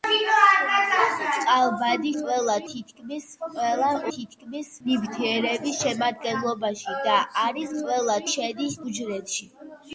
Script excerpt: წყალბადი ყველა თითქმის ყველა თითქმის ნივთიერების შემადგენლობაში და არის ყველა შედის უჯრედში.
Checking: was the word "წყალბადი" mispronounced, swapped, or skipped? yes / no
no